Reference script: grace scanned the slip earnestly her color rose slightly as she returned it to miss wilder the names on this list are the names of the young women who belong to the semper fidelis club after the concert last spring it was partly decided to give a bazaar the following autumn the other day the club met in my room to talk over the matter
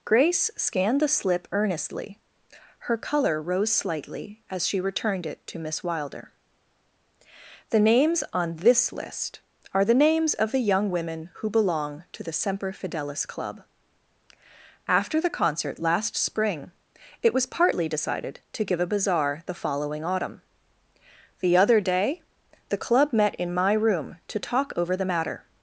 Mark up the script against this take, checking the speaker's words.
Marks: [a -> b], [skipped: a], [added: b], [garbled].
grace scanned the slip earnestly her color rose slightly as she returned it to miss wilder the names on this list are the names of the young women who belong to the semper fidelis club after the concert last spring it was partly decided to give a bazaar the following autumn the other day the club met in my room to talk over the matter